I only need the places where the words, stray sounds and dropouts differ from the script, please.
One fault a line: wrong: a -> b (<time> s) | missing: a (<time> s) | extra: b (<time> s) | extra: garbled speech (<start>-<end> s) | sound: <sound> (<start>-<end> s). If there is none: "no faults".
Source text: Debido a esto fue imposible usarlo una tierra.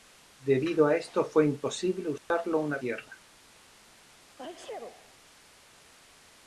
sound: dropout (2.2-2.3 s)
sound: sneeze (4.3-5.2 s)